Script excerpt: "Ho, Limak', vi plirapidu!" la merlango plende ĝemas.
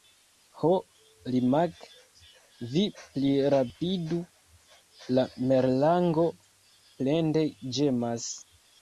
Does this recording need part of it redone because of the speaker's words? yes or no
no